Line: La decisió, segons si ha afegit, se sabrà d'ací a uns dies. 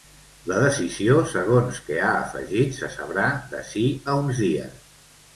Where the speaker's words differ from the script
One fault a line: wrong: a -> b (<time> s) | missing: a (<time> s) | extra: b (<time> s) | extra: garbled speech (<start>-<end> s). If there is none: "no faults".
wrong: si -> que (1.9 s)